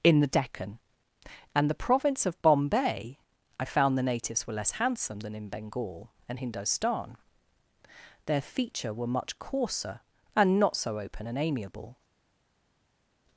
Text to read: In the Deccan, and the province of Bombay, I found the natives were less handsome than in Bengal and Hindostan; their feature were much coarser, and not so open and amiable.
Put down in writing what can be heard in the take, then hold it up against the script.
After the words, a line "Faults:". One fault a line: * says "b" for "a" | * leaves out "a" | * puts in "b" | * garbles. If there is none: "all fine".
In the Deccan, and the province of Bombay, I found the natives were less handsome than in Bengal and Hindostan; their feature were much coarser, and not so open and amiable.
Faults:
all fine